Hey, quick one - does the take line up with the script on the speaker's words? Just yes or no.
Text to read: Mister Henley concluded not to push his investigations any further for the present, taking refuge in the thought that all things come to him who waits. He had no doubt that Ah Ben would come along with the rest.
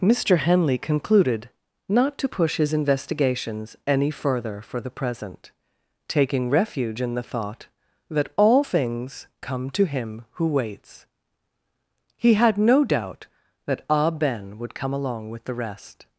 yes